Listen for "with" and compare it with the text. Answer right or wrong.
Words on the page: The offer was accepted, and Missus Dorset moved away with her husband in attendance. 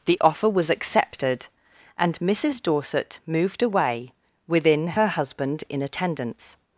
wrong